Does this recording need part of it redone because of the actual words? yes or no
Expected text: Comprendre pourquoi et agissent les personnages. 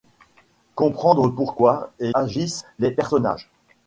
no